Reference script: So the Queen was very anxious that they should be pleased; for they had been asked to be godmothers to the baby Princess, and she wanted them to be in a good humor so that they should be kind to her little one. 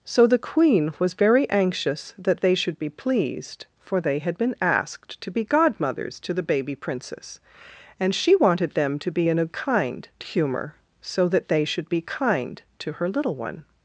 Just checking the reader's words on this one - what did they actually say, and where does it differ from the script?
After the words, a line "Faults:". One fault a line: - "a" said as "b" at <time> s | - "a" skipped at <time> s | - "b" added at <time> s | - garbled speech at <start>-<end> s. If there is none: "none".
So the Queen was very anxious that they should be pleased; for they had been asked to be godmothers to the baby Princess, and she wanted them to be in a kind humor so that they should be kind to her little one.
Faults:
- "good" said as "kind" at 9.5 s